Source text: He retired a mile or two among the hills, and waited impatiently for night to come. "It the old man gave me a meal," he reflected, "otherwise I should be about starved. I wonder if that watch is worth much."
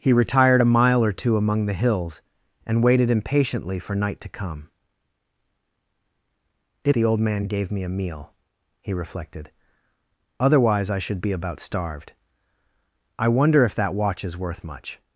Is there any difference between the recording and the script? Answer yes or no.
no